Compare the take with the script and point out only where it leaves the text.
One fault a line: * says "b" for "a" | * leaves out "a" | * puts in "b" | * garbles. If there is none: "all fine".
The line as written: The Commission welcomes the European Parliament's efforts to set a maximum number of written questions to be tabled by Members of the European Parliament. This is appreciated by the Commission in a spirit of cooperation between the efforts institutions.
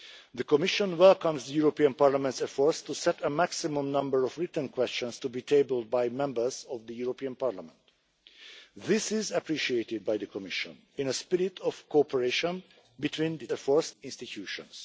all fine